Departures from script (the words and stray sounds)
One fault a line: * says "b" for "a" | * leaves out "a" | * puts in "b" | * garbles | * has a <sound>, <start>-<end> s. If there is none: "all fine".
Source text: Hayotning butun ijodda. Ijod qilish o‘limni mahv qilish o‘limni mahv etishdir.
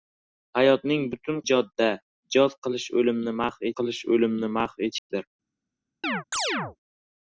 * has a dropout, 5.0-5.1 s
* has a chirp, 6.0-6.8 s